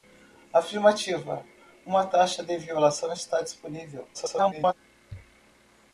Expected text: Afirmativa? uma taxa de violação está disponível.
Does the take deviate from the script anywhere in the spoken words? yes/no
yes